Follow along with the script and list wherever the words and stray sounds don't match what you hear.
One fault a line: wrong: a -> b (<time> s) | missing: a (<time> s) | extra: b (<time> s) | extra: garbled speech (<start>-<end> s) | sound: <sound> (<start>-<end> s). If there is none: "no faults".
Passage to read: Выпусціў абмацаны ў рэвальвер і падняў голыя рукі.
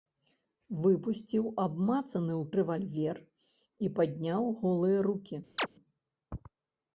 sound: chirp (5.6-5.7 s)